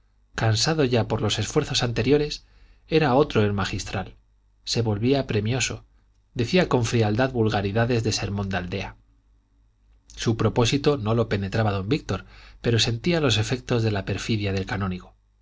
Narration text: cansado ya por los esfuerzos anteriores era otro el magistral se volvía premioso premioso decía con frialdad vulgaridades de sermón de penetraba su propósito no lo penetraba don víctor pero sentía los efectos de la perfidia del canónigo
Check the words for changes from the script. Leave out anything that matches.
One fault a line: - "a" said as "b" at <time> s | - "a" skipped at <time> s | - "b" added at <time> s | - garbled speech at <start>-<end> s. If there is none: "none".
- "premioso" skipped at 5.8 s
- "penetraba" said as "aldea" at 8.6 s